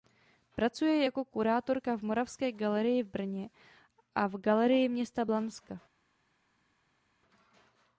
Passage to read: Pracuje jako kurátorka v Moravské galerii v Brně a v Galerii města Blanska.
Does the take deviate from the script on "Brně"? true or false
false